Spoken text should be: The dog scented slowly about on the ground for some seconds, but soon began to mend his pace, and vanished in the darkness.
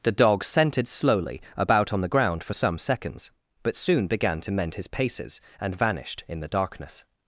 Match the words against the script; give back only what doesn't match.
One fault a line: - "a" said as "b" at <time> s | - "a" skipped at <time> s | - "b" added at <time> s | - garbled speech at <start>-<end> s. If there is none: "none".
- "pace" said as "paces" at 4.9 s